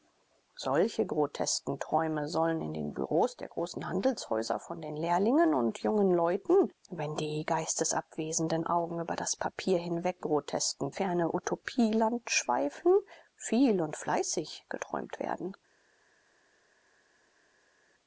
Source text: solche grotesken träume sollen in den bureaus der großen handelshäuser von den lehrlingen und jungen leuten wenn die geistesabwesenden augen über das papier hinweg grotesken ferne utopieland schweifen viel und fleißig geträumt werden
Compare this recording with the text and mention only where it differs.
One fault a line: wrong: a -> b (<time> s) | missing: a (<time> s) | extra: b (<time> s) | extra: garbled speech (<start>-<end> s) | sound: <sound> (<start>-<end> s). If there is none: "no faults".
no faults